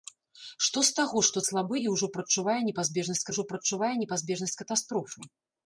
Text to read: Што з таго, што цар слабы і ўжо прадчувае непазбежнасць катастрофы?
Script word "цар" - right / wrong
wrong